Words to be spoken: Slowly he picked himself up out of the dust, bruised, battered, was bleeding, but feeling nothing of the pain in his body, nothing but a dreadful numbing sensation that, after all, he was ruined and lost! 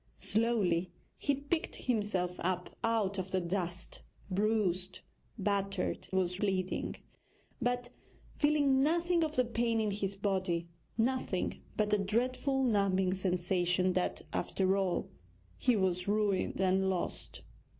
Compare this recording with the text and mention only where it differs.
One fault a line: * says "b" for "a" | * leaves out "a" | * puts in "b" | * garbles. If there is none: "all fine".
all fine